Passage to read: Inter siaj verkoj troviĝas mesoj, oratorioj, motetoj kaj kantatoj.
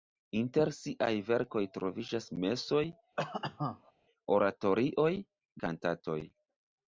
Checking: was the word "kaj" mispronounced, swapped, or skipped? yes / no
yes